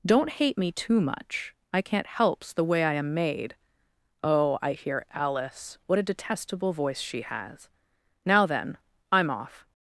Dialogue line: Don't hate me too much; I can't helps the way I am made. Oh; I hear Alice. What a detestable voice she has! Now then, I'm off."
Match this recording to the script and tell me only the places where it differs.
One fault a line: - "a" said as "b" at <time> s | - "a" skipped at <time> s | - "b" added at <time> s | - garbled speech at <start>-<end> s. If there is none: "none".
none